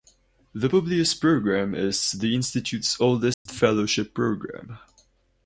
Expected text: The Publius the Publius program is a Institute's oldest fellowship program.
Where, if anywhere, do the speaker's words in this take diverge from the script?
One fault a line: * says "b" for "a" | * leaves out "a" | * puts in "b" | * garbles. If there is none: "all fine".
* leaves out "the Publius"
* says "the" for "a"